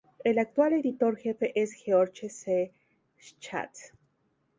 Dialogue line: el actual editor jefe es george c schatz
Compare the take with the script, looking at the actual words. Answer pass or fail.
pass